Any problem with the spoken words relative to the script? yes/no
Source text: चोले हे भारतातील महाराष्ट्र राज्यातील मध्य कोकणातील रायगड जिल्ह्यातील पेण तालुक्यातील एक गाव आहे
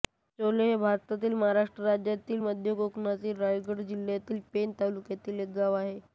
no